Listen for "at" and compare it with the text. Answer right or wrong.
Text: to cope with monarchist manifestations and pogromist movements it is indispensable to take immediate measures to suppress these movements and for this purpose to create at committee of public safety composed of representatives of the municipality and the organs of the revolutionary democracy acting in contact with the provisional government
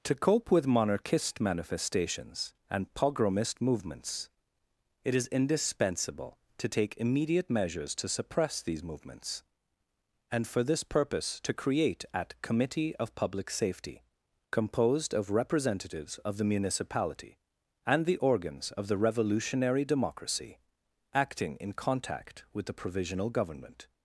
right